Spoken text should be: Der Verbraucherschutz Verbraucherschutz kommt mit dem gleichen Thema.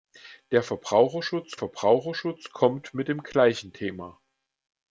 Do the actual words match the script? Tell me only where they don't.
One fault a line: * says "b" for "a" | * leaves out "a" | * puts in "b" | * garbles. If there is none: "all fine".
all fine